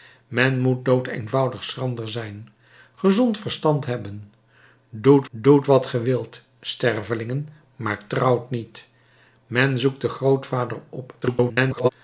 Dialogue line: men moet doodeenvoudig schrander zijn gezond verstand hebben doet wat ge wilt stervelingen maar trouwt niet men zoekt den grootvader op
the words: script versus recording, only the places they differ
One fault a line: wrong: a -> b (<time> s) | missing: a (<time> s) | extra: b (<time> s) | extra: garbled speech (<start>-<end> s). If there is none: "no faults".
extra: doet (5.3 s)
extra: garbled speech (11.2-11.9 s)